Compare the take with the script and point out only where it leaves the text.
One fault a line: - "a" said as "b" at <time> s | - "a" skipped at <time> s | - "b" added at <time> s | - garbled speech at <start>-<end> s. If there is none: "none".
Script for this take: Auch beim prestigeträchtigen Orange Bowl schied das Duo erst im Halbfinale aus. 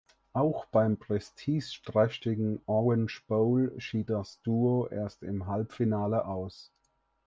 none